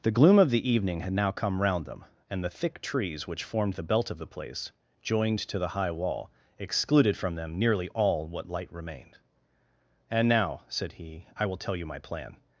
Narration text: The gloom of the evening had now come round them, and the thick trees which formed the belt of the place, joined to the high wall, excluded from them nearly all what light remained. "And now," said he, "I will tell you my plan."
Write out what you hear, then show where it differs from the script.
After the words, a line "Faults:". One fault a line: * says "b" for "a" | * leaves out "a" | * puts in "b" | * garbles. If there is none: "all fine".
The gloom of the evening had now come round them, and the thick trees which formed the belt of the place, joined to the high wall, excluded from them nearly all what light remained. "And now," said he, "I will tell you my plan."
Faults:
all fine